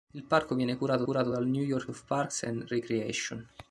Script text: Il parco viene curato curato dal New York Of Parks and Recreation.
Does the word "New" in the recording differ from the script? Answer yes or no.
no